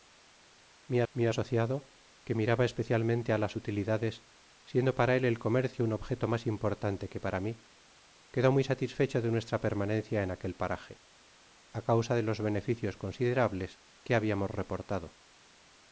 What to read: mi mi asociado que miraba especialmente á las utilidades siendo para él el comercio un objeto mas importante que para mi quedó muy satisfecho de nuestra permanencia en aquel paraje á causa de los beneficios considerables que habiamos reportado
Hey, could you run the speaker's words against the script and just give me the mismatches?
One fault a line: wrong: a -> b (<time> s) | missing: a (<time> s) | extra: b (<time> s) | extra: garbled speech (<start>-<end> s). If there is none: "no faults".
no faults